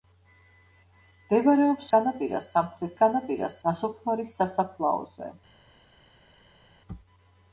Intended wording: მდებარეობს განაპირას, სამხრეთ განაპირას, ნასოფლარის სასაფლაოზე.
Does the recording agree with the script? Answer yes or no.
yes